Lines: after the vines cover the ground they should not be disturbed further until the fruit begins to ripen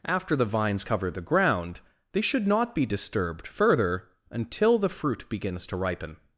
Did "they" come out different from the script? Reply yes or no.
no